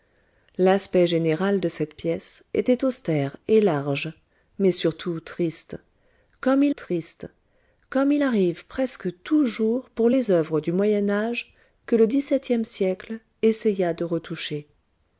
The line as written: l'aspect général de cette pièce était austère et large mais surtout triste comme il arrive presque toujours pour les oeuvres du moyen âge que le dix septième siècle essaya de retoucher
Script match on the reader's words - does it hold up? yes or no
no